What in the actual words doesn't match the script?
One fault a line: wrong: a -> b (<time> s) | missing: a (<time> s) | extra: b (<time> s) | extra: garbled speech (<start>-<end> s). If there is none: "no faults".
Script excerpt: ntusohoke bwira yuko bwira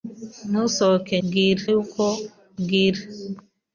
no faults